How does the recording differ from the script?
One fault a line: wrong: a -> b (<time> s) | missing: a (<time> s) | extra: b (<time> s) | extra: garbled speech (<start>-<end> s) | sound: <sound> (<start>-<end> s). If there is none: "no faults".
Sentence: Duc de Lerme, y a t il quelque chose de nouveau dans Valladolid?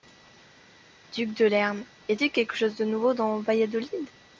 no faults